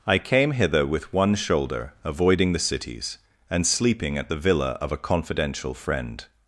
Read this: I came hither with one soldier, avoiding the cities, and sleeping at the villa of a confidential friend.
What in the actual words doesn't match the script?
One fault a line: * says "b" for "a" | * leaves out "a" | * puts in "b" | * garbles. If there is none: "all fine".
* says "shoulder" for "soldier"